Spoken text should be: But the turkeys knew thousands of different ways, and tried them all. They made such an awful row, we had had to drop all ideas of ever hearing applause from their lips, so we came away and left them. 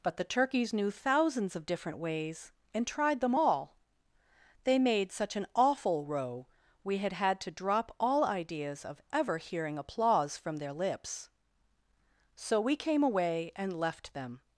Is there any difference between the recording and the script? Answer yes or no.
no